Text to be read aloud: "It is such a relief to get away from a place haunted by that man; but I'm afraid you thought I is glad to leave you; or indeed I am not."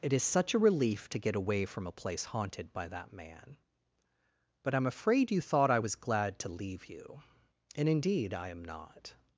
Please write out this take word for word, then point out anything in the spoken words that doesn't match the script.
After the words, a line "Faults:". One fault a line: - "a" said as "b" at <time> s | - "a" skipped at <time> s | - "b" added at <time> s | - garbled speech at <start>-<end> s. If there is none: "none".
"It is such a relief to get away from a place haunted by that man; but I'm afraid you thought I was glad to leave you; and indeed I am not."
Faults:
- "is" said as "was" at 5.8 s
- "or" said as "and" at 7.7 s